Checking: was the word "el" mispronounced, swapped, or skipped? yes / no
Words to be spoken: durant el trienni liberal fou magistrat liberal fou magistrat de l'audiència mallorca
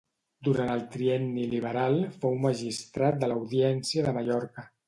no